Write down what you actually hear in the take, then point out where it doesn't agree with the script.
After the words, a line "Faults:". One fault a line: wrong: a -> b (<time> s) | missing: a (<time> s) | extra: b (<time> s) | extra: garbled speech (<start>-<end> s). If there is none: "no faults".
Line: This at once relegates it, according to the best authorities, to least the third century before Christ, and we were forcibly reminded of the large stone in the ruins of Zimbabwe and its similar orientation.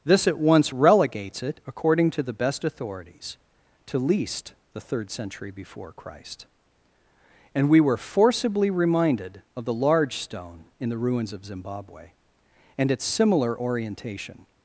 This at once relegates it, according to the best authorities, to least the third century before Christ, and we were forcibly reminded of the large stone in the ruins of Zimbabwe and its similar orientation.
Faults:
no faults